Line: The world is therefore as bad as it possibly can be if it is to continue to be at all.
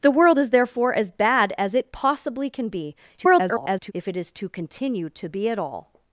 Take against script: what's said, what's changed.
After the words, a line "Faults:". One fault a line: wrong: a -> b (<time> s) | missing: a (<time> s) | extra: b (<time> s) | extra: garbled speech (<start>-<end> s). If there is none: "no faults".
The world is therefore as bad as it possibly can be [garbled] if it is to continue to be at all.
Faults:
extra: garbled speech (3.2-3.9 s)